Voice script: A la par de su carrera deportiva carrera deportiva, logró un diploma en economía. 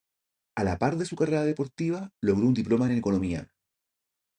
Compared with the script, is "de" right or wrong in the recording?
right